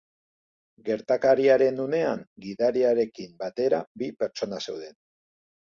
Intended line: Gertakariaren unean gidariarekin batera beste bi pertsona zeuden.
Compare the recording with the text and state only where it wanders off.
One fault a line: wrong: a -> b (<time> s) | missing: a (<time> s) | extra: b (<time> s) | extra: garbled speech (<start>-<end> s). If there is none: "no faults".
missing: beste (3.8 s)